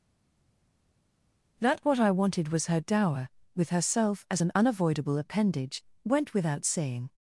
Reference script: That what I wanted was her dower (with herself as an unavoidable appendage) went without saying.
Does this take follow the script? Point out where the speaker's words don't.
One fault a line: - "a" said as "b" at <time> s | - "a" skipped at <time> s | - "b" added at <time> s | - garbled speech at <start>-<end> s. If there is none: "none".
none